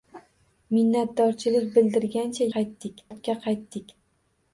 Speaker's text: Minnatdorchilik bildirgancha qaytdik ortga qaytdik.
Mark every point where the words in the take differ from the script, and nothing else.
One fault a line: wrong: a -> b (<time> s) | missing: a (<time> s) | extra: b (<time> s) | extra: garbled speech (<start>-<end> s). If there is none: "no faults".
no faults